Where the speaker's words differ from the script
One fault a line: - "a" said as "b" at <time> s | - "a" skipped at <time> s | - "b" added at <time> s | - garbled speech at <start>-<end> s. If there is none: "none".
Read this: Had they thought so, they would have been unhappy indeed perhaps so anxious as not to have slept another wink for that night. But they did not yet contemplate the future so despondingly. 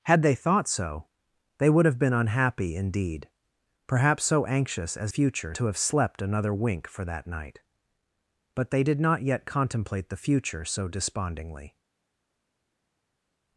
- "not" said as "future" at 5.1 s